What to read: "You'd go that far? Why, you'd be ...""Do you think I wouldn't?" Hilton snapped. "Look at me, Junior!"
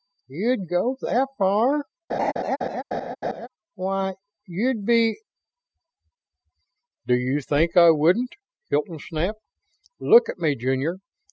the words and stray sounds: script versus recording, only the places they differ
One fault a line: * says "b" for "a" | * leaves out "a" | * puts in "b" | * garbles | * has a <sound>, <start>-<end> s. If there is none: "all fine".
* has a laugh, 2.1-3.5 s